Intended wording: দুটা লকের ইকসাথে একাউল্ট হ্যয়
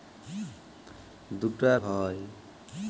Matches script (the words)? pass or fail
fail